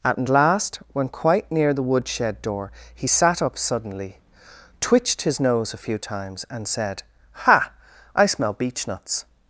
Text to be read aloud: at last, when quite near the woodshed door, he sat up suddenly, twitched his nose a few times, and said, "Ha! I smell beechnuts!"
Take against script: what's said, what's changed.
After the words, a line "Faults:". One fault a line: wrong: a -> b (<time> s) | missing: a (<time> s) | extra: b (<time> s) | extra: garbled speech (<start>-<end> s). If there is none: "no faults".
at last, when quite near the woodshed door, he sat up suddenly, twitched his nose a few times, and said, "Ha! I smell beechnuts!"
Faults:
no faults